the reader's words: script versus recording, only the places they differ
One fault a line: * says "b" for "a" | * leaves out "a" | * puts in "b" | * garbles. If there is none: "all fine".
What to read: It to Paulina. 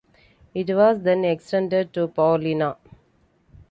* puts in "was then extended"